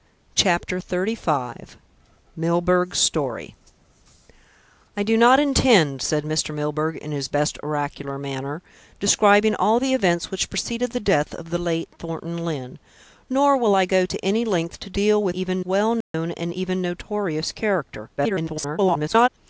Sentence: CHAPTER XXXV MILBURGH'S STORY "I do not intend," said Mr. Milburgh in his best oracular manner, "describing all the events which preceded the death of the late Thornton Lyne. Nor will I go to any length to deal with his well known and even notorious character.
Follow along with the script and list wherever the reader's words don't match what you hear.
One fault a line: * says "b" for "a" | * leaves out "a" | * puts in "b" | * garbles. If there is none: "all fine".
* says "even" for "his"
* garbles